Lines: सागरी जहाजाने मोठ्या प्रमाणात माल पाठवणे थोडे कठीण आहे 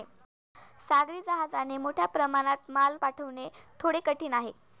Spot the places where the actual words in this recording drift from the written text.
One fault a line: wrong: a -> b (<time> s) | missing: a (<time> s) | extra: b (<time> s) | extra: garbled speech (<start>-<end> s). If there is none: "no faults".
no faults